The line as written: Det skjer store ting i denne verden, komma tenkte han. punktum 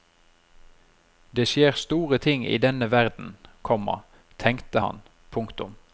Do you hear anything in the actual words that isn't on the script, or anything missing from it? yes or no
no